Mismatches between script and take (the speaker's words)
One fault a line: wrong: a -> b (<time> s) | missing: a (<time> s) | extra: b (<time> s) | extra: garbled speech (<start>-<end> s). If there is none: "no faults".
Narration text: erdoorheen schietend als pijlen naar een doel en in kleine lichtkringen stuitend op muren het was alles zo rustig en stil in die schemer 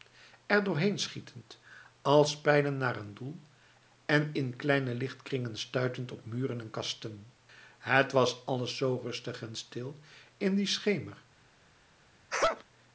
extra: en kasten (6.6 s)